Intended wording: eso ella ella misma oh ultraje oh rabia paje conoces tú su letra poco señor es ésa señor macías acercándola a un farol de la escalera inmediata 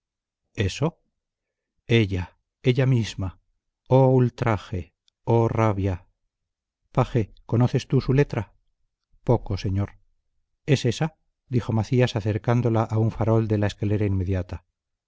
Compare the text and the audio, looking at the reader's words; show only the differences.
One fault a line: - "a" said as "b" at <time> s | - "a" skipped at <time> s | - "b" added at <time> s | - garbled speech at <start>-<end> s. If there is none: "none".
- "señor" said as "dijo" at 11.5 s